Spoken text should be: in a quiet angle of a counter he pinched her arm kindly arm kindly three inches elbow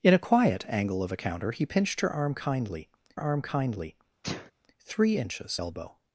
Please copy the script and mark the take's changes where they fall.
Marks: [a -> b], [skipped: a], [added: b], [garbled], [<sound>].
in a quiet angle of a counter he pinched her arm kindly arm kindly [sneeze] three inches elbow